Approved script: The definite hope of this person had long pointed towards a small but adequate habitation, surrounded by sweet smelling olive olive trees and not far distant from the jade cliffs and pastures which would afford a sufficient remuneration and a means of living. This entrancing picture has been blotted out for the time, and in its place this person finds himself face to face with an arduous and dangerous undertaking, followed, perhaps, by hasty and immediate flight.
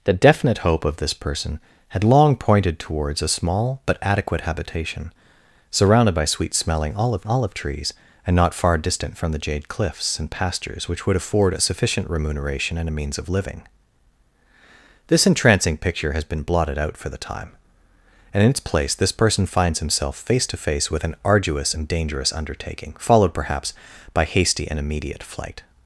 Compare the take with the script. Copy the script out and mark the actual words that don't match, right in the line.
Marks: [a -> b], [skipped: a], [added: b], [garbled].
The definite hope of this person had long pointed towards a small but adequate habitation, surrounded by sweet smelling olive olive trees and not far distant from the jade cliffs and pastures which would afford a sufficient remuneration and a means of living. This entrancing picture has been blotted out for the time, and in its place this person finds himself face to face with an arduous and dangerous undertaking, followed, perhaps, by hasty and immediate flight.